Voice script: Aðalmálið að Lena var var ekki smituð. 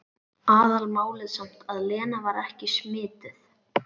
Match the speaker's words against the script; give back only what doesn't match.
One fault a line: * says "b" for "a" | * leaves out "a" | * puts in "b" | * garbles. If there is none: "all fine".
* puts in "samt"
* leaves out "var"